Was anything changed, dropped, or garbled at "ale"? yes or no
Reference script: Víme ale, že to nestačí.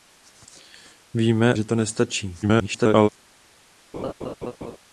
yes